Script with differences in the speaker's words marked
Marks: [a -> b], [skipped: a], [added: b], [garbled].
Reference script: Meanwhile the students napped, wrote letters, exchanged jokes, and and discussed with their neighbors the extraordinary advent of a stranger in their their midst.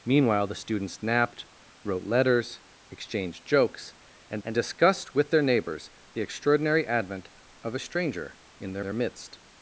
Meanwhile the students napped, wrote letters, exchanged jokes, and and discussed with their neighbors the extraordinary advent of a stranger in their their midst.